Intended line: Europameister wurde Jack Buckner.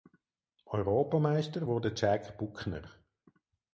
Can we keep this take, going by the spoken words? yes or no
yes